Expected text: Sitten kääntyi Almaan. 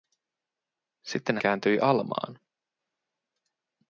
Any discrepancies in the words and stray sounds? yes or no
no